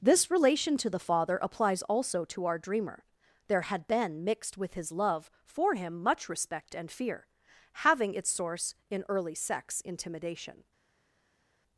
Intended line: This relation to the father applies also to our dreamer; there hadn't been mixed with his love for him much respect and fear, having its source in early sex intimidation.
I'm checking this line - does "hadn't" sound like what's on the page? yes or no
no